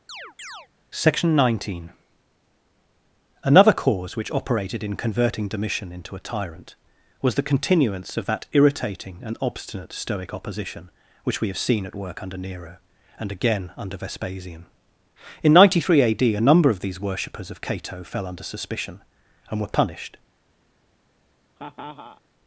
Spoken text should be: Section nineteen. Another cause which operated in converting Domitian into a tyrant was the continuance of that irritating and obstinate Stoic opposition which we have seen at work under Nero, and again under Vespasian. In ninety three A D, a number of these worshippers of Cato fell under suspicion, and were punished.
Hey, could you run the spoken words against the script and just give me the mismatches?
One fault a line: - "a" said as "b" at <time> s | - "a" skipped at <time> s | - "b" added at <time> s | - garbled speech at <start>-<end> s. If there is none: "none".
none